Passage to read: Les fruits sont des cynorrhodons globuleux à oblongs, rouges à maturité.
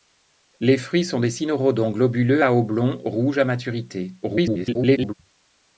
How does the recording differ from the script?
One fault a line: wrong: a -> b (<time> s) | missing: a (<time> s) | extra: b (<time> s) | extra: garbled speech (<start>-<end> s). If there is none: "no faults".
extra: garbled speech (4.2-5.1 s)